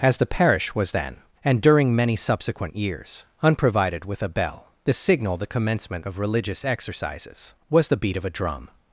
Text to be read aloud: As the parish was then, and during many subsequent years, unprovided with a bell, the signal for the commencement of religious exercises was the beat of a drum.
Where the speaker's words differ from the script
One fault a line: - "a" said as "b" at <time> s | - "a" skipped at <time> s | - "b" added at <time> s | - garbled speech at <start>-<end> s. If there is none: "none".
- "for" skipped at 5.4 s